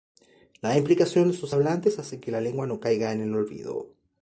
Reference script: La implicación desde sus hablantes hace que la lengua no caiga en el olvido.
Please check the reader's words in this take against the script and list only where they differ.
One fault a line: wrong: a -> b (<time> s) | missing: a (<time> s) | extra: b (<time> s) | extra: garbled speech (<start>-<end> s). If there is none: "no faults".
wrong: desde -> de (1.3 s)